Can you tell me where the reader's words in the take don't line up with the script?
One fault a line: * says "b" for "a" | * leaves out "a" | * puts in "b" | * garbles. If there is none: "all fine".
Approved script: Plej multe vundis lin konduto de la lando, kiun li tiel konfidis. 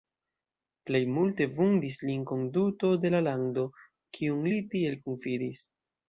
all fine